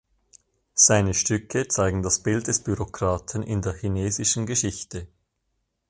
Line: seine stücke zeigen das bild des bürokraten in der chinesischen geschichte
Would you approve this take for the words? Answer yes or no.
yes